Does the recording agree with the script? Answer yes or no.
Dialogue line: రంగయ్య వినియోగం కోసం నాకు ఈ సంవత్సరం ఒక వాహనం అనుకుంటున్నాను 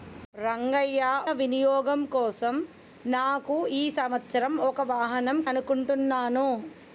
yes